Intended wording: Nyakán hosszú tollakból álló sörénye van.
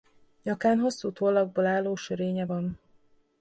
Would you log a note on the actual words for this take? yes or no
no